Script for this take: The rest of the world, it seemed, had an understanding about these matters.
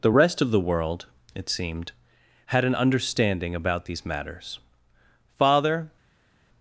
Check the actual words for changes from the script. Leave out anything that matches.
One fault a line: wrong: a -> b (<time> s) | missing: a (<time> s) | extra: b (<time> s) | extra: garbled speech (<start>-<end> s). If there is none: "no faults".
extra: Father (5.4 s)